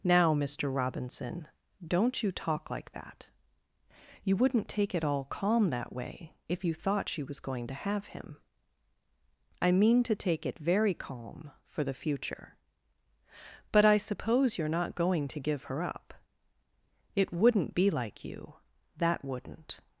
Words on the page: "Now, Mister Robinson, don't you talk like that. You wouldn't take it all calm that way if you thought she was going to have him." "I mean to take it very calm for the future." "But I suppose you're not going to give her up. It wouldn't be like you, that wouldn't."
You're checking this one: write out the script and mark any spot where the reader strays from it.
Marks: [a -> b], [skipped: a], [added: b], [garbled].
"Now, Mister Robinson, don't you talk like that. You wouldn't take it all calm that way if you thought she was going to have him." "I mean to take it very calm for the future." "But I suppose you're not going to give her up. It wouldn't be like you, that wouldn't."